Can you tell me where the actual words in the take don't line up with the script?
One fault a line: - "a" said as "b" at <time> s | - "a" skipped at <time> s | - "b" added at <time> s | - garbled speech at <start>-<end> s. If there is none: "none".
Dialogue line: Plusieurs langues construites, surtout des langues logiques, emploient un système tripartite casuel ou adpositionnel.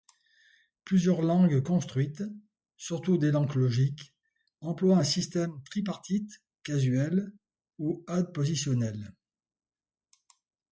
none